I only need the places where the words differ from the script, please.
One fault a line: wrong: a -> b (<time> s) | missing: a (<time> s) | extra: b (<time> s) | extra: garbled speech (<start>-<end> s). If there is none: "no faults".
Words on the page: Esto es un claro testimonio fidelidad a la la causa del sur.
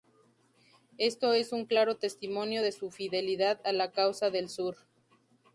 extra: de su (2.6 s)
missing: la (3.9 s)